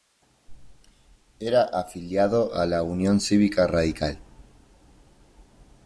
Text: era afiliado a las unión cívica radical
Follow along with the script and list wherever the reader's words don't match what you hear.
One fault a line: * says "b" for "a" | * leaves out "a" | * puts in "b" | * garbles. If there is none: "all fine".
* says "la" for "las"